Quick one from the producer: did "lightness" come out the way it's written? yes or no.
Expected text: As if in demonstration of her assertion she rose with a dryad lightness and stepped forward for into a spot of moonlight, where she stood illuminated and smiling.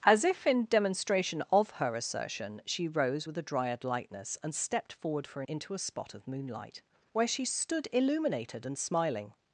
yes